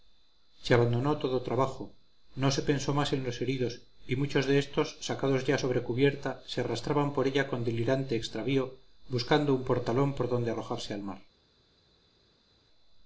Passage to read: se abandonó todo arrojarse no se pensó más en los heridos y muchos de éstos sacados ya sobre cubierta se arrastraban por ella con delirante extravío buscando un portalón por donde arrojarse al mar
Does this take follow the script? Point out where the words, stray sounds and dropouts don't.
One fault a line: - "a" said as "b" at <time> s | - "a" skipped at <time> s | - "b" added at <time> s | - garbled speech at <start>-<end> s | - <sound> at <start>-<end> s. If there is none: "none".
- "arrojarse" said as "trabajo" at 1.4 s